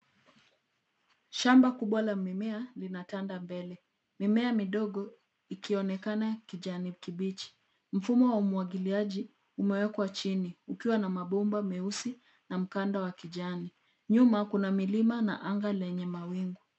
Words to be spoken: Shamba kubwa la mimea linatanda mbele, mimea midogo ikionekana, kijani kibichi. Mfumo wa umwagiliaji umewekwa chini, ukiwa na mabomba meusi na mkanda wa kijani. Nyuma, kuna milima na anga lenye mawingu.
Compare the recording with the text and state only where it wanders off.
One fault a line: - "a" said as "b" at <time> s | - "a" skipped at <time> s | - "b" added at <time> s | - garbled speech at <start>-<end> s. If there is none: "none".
none